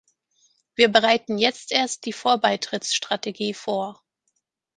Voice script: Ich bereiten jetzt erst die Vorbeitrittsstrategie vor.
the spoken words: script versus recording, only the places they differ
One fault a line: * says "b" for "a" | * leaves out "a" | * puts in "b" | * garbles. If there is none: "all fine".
* says "Wir" for "Ich"